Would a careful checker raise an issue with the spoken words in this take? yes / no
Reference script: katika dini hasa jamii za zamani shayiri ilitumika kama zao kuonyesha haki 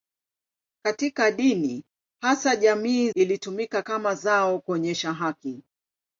yes